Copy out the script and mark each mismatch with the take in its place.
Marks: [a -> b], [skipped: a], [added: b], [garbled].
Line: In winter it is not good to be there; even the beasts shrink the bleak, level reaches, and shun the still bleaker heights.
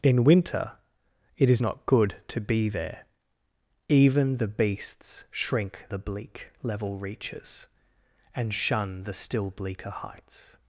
In winter it is not good to be there; even the beasts shrink the bleak, level reaches, and shun the still bleaker heights.